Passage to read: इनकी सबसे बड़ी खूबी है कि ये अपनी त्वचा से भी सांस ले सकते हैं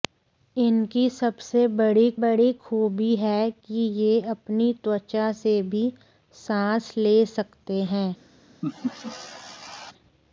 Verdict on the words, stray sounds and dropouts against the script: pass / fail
fail